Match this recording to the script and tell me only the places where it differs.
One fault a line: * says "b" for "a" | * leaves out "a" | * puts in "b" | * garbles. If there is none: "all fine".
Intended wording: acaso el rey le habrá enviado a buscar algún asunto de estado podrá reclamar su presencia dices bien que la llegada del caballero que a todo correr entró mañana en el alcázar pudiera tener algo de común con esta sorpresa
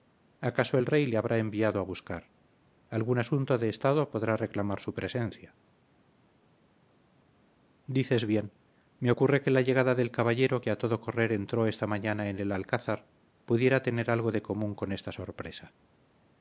* puts in "me ocurre"
* puts in "esta"